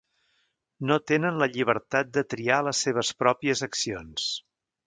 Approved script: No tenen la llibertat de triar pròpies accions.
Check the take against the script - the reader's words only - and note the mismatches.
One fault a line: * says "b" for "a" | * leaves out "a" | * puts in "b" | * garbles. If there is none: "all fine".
* puts in "les seves"